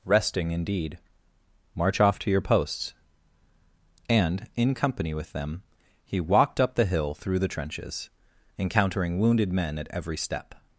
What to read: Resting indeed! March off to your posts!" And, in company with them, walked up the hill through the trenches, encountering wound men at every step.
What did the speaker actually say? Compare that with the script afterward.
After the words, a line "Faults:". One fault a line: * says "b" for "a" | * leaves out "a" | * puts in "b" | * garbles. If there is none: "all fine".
Resting indeed! March off to your posts!" And, in company with them, he walked up the hill through the trenches, encountering wounded men at every step.
Faults:
* puts in "he"
* says "wounded" for "wound"